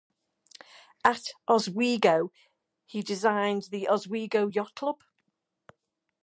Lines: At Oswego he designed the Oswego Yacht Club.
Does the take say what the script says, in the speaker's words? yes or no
yes